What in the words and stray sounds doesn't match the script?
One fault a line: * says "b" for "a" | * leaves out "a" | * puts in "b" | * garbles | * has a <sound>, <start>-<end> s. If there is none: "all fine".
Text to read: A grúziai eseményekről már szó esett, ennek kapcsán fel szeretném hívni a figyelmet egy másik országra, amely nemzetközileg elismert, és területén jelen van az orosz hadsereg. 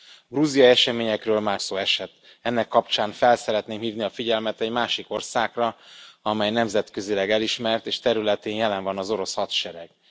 all fine